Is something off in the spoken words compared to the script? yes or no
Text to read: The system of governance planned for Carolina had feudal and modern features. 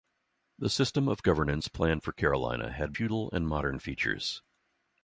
no